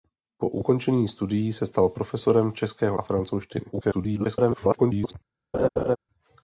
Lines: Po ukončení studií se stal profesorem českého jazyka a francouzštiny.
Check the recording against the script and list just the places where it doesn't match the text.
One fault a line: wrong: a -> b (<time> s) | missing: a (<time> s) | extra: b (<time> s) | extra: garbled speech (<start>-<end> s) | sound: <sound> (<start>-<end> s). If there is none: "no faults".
missing: jazyka (3.0 s)
extra: garbled speech (3.7-5.1 s)
sound: laugh (5.5-6.0 s)